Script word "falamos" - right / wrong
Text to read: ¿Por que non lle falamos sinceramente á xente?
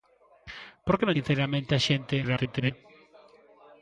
wrong